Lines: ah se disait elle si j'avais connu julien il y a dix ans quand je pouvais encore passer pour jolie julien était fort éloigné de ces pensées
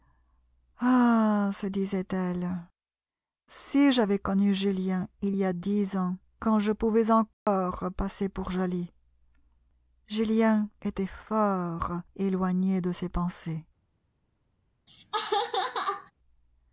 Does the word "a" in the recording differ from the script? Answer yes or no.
no